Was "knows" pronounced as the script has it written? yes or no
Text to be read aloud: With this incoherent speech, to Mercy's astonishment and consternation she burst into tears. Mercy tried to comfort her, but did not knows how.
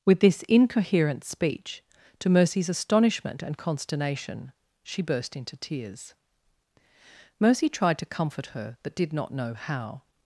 no